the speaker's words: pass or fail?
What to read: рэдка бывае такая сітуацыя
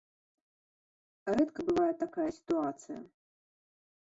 pass